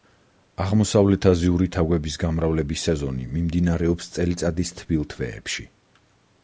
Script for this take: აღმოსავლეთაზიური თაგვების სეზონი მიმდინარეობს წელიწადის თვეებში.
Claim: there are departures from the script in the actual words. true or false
true